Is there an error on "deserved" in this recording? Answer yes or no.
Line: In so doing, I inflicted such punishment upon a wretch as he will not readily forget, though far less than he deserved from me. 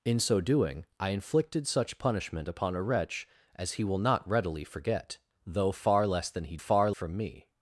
yes